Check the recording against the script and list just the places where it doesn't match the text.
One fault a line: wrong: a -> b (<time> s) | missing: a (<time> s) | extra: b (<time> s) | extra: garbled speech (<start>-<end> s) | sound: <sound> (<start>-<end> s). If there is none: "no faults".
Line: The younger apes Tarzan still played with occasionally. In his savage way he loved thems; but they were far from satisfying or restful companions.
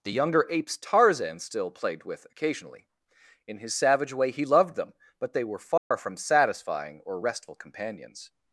wrong: thems -> them (4.8 s)
sound: dropout (5.8-5.9 s)